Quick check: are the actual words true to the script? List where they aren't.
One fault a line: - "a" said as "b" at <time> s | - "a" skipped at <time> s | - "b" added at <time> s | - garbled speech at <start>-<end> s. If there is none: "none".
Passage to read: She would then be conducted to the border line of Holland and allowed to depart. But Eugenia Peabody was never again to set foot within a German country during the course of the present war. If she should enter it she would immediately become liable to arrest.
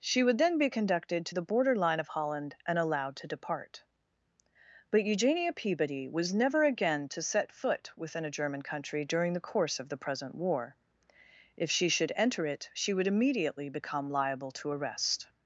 none